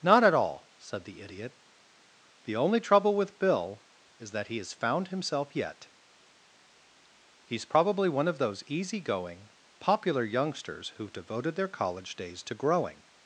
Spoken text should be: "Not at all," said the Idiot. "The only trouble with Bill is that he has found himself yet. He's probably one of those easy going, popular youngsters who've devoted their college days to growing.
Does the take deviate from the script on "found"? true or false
false